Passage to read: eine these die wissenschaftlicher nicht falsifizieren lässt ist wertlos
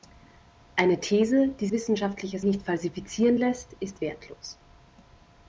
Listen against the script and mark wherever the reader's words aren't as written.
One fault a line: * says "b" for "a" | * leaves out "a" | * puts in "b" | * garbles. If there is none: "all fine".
all fine